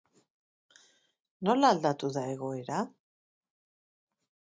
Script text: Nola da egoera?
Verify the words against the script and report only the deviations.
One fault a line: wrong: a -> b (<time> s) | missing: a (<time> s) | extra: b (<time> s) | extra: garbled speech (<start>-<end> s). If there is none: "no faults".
extra: aldatu (1.7 s)